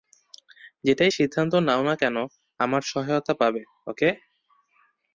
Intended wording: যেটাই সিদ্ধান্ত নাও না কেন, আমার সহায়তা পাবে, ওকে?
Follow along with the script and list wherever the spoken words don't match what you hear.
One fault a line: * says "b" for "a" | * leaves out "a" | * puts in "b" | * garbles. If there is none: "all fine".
all fine